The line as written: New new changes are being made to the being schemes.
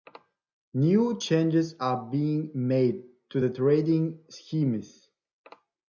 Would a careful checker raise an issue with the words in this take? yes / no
yes